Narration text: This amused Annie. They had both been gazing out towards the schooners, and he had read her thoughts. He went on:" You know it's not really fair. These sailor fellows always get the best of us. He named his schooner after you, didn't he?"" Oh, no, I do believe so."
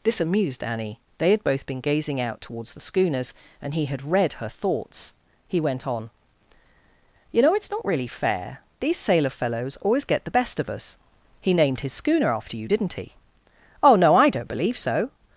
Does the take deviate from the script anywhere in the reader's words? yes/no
yes